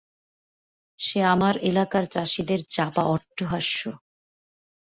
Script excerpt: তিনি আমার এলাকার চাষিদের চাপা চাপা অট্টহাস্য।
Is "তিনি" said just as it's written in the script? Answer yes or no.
no